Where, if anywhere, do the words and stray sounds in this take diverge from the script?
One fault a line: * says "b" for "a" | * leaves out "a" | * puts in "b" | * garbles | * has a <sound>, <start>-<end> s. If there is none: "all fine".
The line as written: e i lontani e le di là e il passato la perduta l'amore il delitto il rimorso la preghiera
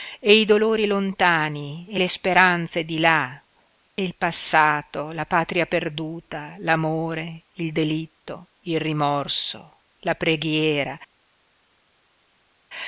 * puts in "dolori"
* puts in "speranze"
* puts in "patria"